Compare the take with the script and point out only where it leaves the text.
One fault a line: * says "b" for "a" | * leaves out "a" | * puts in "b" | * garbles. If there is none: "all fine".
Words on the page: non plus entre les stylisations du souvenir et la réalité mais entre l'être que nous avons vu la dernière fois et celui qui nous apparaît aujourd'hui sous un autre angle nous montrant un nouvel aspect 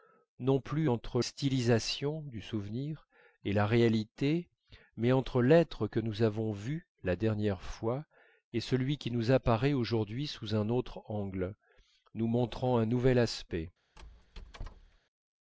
* leaves out "les"